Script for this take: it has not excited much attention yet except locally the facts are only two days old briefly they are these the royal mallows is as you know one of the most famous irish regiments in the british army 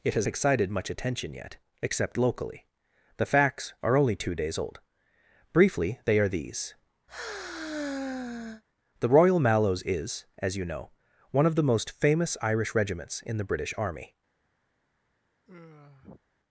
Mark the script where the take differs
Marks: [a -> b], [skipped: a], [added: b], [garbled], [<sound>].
it has [skipped: not] excited much attention yet except locally the facts are only two days old briefly they are these [sigh] the royal mallows is as you know one of the most famous irish regiments in the british army [sigh]